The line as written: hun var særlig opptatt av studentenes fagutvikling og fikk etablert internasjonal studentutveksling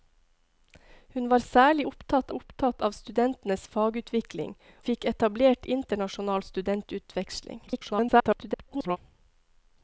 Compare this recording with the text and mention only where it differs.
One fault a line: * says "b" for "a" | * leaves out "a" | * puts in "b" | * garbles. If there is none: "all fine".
* puts in "opptatt"
* leaves out "og"
* garbles